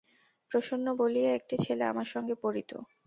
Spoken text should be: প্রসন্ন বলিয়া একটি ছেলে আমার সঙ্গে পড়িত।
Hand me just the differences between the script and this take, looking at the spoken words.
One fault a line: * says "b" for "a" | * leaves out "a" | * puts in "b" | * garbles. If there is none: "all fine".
all fine